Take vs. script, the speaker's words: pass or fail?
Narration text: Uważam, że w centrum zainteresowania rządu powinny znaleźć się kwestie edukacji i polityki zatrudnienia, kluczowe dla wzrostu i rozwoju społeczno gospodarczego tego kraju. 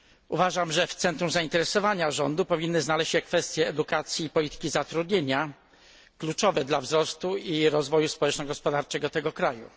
pass